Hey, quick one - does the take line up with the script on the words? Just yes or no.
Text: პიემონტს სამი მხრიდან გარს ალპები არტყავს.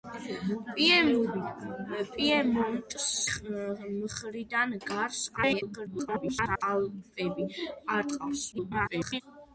no